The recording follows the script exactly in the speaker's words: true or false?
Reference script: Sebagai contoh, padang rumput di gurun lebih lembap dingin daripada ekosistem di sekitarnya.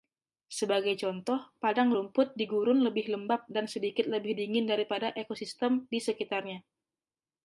false